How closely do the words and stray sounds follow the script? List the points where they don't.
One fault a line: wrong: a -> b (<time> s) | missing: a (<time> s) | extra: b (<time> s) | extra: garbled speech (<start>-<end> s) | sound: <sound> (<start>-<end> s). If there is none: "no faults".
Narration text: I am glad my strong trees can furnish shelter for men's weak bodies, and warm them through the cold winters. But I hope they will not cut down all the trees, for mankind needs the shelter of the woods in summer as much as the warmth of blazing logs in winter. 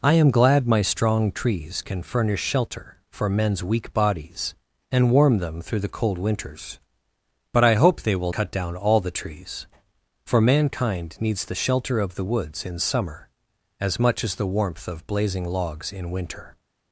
missing: not (8.3 s)